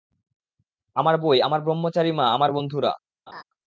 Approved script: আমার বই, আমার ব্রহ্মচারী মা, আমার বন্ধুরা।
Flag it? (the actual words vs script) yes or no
no